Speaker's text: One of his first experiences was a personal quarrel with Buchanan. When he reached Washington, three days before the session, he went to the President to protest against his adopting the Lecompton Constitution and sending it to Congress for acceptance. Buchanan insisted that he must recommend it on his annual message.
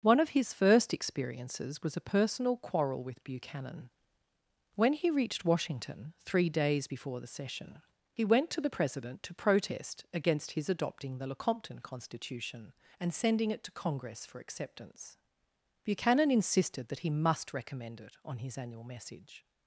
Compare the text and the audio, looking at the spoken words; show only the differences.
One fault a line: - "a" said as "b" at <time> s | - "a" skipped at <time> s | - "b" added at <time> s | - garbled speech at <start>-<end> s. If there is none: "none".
none